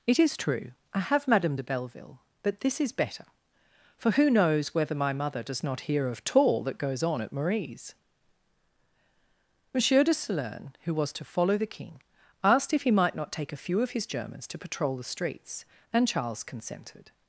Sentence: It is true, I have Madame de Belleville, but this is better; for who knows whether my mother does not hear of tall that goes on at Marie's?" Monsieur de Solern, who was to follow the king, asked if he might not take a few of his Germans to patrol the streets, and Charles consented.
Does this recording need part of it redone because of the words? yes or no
no